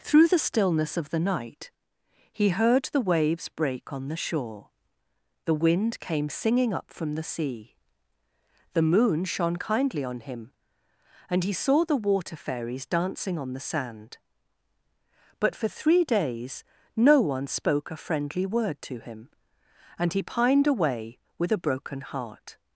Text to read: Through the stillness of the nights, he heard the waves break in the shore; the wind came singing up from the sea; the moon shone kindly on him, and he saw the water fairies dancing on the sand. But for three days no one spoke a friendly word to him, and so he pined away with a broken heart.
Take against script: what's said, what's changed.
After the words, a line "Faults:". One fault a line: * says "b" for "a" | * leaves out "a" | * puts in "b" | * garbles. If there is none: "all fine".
Through the stillness of the night, he heard the waves break on the shore; the wind came singing up from the sea; the moon shone kindly on him, and he saw the water fairies dancing on the sand. But for three days no one spoke a friendly word to him, and he pined away with a broken heart.
Faults:
* says "night" for "nights"
* says "on" for "in"
* leaves out "so"